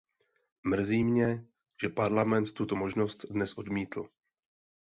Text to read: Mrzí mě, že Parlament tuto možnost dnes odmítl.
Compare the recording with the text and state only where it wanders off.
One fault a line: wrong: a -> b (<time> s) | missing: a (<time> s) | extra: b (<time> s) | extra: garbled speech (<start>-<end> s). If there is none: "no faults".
no faults